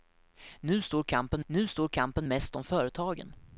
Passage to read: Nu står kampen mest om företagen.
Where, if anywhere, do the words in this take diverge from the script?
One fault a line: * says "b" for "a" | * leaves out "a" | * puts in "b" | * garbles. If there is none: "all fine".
* puts in "nu står kampen"